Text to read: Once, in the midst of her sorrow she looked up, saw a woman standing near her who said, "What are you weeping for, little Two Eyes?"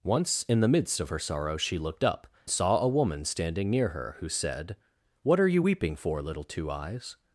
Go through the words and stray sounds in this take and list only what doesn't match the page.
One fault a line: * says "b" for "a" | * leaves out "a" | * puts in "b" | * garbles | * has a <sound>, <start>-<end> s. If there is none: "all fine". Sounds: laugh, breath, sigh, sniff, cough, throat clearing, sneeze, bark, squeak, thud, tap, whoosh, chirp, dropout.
all fine